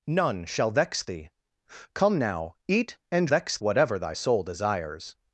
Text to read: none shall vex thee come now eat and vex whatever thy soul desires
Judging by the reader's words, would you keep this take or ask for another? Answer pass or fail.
pass